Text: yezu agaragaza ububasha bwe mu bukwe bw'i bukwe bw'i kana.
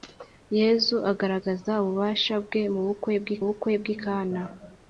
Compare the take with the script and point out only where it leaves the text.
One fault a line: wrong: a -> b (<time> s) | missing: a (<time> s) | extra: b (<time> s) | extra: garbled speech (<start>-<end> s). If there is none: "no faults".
no faults